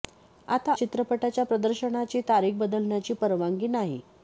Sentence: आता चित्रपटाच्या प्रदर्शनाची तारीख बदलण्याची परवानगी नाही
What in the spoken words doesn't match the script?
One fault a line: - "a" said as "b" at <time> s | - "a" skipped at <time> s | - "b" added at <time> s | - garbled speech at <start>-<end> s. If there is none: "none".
none